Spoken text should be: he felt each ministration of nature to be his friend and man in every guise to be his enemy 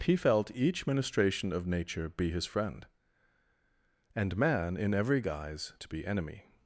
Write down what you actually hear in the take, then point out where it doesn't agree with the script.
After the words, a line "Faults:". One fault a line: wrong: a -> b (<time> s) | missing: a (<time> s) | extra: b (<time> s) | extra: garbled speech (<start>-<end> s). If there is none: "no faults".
he felt each ministration of nature be his friend and man in every guise to be enemy
Faults:
missing: to (2.1 s)
missing: his (6.1 s)